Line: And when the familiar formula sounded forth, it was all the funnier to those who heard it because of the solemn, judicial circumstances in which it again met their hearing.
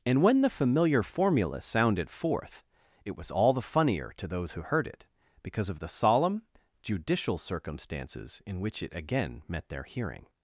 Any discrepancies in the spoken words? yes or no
no